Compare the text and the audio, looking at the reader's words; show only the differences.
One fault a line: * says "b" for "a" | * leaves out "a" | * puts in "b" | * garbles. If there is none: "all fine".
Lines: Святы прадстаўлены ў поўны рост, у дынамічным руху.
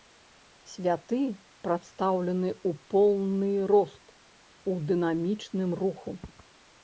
all fine